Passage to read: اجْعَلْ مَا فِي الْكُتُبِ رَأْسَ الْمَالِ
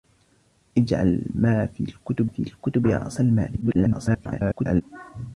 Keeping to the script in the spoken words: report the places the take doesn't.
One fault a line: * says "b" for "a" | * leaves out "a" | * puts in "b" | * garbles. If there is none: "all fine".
* puts in "فِي الْكُتُبِ"
* garbles